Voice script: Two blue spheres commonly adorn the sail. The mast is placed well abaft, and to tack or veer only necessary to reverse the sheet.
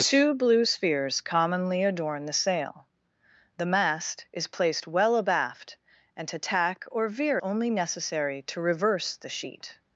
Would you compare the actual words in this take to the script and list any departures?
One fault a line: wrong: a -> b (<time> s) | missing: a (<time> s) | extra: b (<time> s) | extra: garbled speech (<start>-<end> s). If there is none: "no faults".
no faults